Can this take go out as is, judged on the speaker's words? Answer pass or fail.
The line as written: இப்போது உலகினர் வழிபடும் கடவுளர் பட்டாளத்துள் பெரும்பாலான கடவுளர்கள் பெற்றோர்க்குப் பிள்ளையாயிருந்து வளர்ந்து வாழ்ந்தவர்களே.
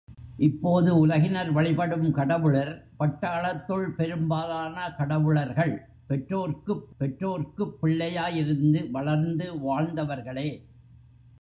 fail